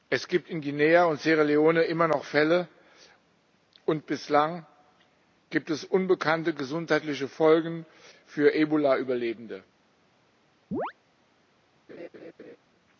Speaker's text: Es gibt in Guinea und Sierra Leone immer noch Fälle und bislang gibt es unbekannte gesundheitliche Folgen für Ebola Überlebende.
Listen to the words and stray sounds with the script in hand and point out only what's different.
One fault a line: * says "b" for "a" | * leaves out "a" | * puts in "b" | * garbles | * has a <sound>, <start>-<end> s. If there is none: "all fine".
* has a chirp, 10.7-10.9 s
* has a laugh, 11.9-12.6 s